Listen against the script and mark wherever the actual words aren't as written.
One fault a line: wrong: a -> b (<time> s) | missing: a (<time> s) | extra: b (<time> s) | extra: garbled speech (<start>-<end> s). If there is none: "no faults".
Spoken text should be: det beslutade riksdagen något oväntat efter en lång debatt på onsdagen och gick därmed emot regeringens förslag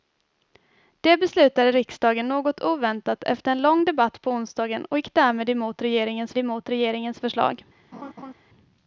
extra: emot regeringens (6.4 s)